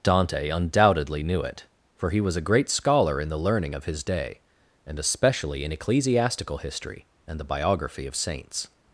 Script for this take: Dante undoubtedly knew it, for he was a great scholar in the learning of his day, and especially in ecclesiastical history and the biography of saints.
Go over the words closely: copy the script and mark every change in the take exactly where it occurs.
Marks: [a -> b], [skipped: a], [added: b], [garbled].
Dante undoubtedly knew it, for he was a great scholar in the learning of his day, and especially in ecclesiastical history and the biography of saints.